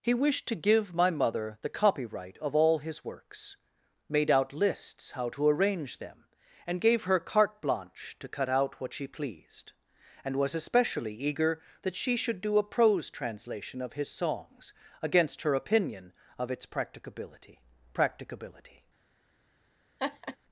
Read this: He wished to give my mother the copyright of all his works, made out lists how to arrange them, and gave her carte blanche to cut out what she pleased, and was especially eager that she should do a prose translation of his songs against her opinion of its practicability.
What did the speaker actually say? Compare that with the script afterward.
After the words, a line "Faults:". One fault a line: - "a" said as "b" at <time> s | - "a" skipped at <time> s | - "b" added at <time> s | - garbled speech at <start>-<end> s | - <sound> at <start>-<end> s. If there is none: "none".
He wished to give my mother the copyright of all his works, made out lists how to arrange them, and gave her carte blanche to cut out what she pleased, and was especially eager that she should do a prose translation of his songs against her opinion of its practicability practicability.
Faults:
- "practicability" added at 17.9 s
- laugh at 20.0-20.4 s